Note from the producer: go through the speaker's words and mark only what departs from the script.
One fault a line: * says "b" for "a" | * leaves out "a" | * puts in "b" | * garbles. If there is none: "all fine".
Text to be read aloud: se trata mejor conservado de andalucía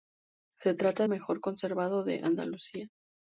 all fine